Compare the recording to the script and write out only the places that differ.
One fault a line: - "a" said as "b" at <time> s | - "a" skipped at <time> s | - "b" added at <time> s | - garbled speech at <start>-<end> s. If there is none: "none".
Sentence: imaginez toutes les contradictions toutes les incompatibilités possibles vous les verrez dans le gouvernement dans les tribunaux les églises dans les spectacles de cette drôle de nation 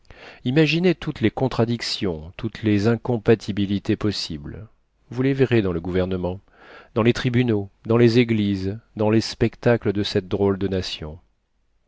- "dans" added at 7.9 s